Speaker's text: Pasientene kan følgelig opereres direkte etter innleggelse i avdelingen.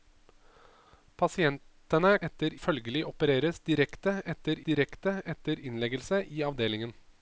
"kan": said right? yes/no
no